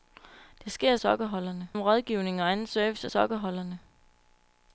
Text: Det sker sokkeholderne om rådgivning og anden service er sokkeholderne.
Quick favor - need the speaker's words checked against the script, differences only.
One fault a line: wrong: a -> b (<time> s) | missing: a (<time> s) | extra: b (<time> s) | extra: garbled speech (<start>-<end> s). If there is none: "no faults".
no faults